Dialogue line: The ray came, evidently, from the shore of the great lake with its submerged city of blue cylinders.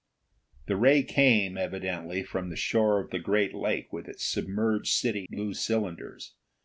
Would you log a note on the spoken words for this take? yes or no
yes